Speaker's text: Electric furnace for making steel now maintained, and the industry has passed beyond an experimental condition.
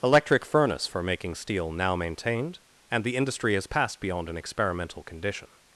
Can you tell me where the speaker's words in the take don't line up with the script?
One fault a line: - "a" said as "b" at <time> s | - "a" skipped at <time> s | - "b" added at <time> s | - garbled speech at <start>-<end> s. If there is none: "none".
none